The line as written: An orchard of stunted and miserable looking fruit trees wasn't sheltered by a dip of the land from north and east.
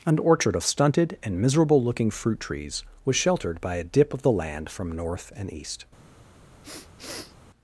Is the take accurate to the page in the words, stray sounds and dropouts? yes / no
no